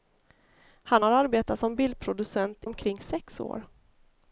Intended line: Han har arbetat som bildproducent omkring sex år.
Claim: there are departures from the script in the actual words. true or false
false